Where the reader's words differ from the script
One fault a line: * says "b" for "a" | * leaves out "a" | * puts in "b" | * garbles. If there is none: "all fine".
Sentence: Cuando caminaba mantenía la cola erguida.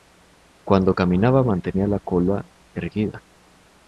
all fine